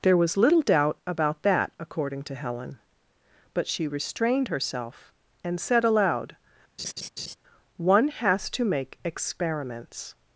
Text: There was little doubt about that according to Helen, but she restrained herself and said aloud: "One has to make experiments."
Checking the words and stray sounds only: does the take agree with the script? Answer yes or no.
no